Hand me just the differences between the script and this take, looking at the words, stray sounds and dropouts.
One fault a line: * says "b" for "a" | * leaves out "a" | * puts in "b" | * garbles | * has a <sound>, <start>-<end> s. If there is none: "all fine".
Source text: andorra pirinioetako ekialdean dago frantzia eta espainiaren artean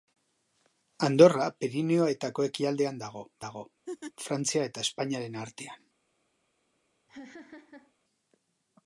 * puts in "dago"
* has a laugh, 3.9-4.1 s
* has a laugh, 7.1-7.9 s